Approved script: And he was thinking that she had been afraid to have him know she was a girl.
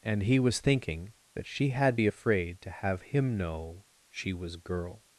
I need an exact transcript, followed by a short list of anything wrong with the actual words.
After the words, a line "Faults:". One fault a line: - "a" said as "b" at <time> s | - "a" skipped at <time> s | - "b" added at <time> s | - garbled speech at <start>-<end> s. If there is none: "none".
And he was thinking that she had be afraid to have him know she was girl.
Faults:
- "been" said as "be" at 1.9 s
- "a" skipped at 4.6 s